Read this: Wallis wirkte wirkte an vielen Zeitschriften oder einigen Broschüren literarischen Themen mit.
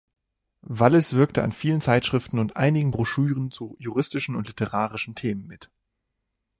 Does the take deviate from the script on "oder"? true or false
true